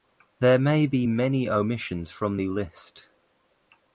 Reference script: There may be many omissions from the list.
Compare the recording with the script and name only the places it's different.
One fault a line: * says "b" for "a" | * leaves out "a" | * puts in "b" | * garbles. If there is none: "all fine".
all fine